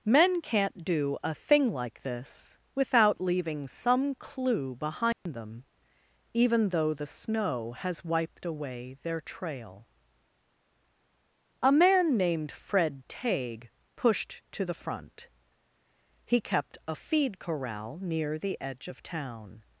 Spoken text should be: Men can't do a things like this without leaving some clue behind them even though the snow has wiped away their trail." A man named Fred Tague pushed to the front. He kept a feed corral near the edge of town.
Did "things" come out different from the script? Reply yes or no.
yes